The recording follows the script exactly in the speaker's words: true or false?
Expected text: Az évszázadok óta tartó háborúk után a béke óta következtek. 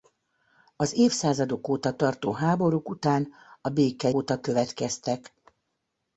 true